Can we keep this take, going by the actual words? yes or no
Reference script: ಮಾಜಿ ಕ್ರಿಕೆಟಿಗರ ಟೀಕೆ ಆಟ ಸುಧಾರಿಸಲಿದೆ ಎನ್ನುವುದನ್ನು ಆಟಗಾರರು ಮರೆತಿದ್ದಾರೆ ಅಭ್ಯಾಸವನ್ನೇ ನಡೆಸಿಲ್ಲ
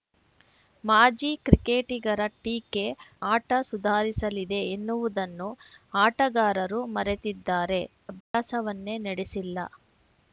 yes